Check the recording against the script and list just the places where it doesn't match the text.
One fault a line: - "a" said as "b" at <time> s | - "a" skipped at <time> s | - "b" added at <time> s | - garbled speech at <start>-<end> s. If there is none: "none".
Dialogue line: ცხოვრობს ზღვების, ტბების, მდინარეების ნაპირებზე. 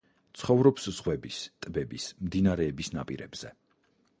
none